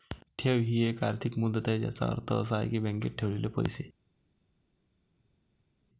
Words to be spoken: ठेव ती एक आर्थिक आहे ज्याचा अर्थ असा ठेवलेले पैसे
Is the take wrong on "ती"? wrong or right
wrong